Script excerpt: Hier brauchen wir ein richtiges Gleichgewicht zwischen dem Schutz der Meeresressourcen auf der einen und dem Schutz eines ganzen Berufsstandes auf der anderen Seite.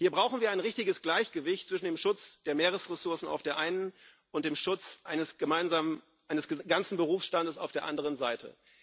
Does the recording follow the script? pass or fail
pass